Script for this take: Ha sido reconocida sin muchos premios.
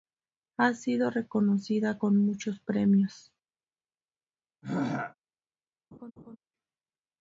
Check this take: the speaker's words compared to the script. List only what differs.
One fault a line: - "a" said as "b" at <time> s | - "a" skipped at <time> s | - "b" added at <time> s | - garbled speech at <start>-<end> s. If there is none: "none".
- "sin" said as "con" at 2.0 s